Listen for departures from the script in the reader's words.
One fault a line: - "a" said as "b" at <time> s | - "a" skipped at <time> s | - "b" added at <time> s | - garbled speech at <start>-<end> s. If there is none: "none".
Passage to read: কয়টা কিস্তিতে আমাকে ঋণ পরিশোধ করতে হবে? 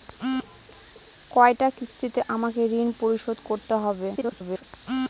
- garbled speech at 4.1-4.6 s